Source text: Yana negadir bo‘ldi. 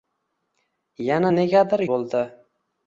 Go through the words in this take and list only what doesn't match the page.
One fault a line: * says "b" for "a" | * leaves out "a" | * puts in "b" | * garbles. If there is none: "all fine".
all fine